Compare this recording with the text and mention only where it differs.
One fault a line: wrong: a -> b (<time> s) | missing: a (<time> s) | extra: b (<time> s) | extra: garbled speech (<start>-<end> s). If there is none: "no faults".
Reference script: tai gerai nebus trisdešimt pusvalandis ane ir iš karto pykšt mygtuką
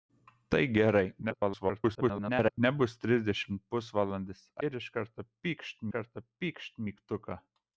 extra: garbled speech (1.2-2.6 s)
missing: ane (4.4 s)
extra: karto pykšt (5.9 s)